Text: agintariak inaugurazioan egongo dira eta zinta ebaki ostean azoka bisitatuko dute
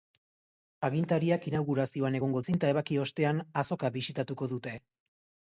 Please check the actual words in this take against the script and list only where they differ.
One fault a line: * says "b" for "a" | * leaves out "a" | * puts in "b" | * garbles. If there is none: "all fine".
* leaves out "dira eta"